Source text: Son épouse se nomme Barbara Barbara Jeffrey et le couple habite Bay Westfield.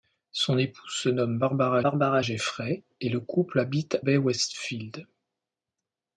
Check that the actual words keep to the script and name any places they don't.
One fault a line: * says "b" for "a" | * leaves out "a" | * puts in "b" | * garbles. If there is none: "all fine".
all fine